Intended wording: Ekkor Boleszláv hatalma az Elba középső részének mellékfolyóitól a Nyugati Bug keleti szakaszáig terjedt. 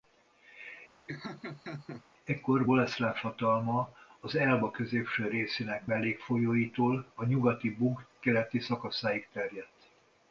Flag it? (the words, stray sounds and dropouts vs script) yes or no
yes